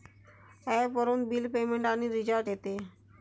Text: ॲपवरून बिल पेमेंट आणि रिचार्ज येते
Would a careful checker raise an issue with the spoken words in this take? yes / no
no